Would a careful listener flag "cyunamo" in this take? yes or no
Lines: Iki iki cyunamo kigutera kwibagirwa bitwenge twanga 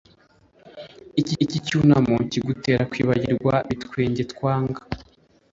no